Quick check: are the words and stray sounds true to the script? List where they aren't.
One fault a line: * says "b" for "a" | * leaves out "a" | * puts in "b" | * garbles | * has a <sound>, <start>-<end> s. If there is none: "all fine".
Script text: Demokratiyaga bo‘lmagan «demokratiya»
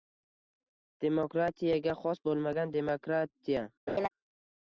* puts in "xos"
* has a laugh, 3.9-4.1 s